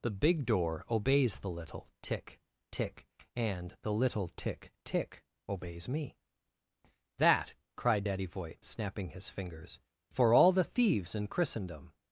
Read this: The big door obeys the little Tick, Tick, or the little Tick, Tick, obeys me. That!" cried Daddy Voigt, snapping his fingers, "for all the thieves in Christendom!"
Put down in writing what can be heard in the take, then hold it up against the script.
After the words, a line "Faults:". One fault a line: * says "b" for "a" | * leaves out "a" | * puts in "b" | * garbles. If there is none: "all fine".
The big door obeys the little Tick, Tick, and the little Tick, Tick, obeys me. That!" cried Daddy Voigt, snapping his fingers, "for all the thieves in Christendom!"
Faults:
* says "and" for "or"